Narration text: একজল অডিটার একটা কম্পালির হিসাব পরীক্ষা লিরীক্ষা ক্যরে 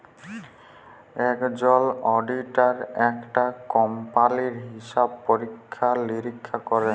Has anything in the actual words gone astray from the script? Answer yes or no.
no